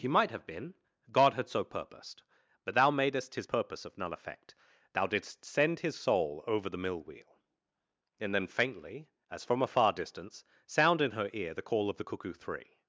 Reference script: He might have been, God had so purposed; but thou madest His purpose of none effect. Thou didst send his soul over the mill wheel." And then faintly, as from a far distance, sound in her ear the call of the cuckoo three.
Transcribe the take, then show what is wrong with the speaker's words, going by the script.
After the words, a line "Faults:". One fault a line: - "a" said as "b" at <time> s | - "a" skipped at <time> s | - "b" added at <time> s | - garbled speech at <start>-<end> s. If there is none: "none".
He might have been, God had so purposed; but thou madest His purpose of none effect. Thou didst send his soul over the mill wheel." And then faintly, as from a far distance, sound in her ear the call of the cuckoo three.
Faults:
none